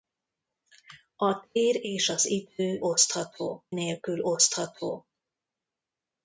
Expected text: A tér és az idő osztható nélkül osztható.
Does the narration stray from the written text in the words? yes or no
no